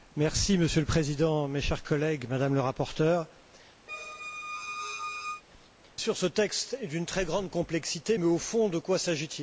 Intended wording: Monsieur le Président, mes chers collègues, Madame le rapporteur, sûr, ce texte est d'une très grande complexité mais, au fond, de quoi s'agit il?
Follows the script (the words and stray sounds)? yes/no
no